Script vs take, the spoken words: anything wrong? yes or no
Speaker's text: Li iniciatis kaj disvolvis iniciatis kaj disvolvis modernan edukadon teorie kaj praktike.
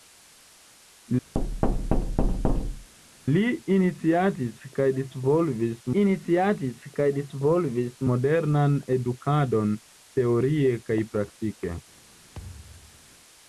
no